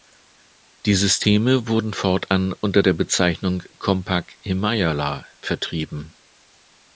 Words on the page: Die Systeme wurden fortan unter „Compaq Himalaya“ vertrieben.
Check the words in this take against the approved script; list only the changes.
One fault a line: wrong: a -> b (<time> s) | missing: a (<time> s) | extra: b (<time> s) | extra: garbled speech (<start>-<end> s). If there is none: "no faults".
extra: der Bezeichnung (2.8 s)